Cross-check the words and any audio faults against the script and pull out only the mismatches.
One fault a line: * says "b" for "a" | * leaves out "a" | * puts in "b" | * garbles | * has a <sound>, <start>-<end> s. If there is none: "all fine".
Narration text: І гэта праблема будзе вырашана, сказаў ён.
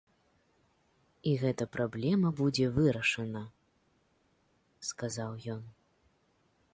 all fine